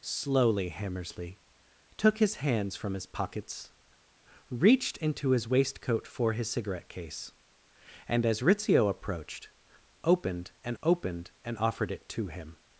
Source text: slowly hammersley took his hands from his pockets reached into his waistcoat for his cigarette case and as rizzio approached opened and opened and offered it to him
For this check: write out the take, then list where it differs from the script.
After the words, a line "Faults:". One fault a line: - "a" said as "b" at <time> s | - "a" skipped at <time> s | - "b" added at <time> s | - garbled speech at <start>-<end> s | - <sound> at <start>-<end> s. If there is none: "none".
slowly hammersley took his hands from his pockets reached into his waistcoat for his cigarette case and as rizzio approached opened and opened and offered it to him
Faults:
none